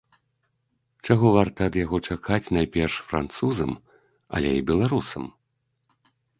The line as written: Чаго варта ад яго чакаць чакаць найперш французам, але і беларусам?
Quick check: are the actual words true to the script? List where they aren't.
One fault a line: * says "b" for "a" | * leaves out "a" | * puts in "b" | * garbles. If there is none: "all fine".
* leaves out "чакаць"